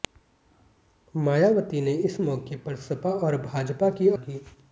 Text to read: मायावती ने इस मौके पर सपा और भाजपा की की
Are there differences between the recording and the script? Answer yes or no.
no